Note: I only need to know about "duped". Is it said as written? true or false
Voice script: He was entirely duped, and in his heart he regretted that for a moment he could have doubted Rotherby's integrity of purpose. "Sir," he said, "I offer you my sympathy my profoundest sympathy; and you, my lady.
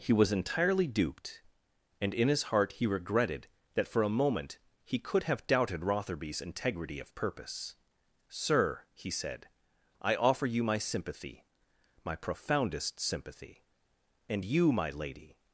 true